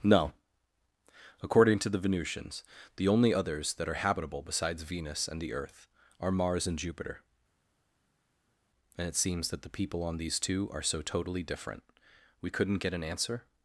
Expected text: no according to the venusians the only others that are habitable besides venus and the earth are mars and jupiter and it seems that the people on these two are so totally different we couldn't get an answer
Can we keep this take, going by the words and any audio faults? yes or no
yes